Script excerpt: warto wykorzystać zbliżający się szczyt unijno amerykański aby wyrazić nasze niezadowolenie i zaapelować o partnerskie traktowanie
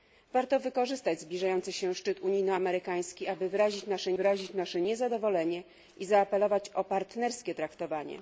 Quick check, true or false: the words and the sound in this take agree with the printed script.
false